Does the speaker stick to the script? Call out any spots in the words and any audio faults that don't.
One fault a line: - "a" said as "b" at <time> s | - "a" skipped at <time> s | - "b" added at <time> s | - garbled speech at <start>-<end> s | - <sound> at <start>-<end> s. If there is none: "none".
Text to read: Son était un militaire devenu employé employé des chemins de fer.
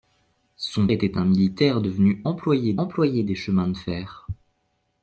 none